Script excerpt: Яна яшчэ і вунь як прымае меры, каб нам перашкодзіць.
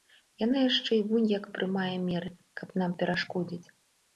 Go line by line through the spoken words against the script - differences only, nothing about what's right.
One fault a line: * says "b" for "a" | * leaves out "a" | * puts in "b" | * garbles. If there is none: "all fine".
all fine